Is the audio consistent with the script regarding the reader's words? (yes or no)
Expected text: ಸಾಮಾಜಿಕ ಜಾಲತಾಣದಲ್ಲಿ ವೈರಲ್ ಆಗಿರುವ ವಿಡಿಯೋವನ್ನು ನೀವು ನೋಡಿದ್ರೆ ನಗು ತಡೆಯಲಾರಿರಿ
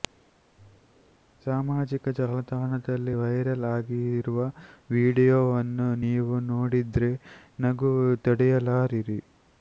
yes